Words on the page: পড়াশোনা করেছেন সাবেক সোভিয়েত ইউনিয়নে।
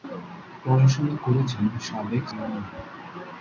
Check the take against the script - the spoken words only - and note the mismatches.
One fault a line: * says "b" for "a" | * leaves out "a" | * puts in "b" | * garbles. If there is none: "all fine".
* leaves out "সোভিয়েত"